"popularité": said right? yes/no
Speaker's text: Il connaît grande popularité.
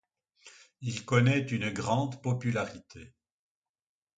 yes